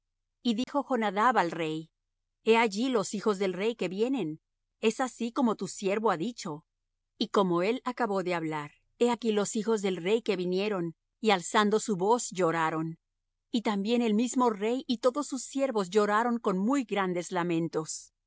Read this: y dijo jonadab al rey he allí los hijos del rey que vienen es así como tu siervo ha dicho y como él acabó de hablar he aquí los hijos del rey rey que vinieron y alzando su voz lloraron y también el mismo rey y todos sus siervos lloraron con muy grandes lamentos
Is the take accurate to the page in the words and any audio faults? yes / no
no